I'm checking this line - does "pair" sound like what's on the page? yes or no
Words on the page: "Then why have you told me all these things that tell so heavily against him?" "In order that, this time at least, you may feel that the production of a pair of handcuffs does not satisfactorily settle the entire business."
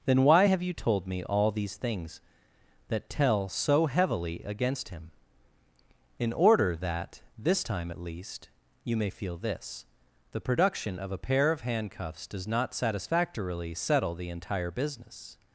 yes